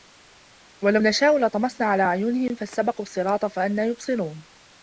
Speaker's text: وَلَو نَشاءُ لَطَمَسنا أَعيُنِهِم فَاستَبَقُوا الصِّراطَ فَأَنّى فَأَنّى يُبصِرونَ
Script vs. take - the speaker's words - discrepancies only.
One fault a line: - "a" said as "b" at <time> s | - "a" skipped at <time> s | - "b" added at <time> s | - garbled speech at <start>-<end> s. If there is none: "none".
- "عَلى" added at 1.9 s
- "فَأَنّى" skipped at 3.8 s